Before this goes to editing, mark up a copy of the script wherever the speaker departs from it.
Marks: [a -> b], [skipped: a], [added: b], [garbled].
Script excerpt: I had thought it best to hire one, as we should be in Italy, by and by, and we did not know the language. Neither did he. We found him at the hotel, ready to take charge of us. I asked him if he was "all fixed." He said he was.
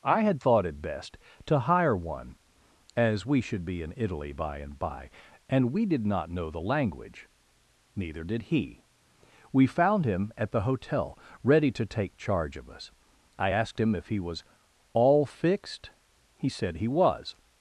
I had thought it best to hire one, as we should be in Italy, by and by, and we did not know the language. Neither did he. We found him at the hotel, ready to take charge of us. I asked him if he was "all fixed." He said he was.